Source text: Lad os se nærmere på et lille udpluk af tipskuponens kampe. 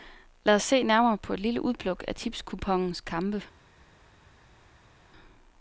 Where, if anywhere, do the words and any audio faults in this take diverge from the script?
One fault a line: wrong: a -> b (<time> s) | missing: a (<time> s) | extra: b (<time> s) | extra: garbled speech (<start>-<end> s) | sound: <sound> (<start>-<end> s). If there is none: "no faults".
no faults